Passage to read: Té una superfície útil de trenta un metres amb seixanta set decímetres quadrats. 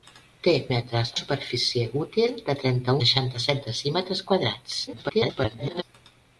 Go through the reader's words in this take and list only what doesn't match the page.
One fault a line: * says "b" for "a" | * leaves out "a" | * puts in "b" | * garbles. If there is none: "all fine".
* says "metres" for "una"
* leaves out "un metres amb"
* garbles